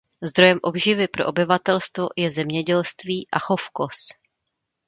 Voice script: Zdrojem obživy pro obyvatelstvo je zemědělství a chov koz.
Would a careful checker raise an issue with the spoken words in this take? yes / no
no